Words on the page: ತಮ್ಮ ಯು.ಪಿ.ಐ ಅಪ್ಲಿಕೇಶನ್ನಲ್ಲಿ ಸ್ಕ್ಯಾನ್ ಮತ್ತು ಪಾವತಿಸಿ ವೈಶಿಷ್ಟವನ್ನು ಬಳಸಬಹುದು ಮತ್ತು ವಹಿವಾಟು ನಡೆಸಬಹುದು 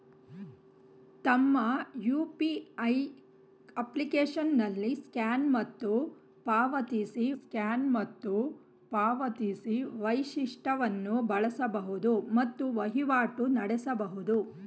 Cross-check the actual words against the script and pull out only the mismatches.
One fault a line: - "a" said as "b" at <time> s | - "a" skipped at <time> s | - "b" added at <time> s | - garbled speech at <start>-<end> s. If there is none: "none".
- "ಸ್ಕ್ಯಾನ್ ಮತ್ತು ಪಾವತಿಸಿ" added at 7.3 s